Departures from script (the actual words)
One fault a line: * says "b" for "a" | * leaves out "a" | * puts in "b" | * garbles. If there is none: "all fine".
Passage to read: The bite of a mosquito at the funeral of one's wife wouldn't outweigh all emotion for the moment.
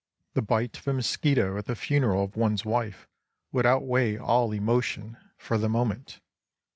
* says "would" for "wouldn't"